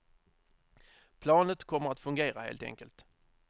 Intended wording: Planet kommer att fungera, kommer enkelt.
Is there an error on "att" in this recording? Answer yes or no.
no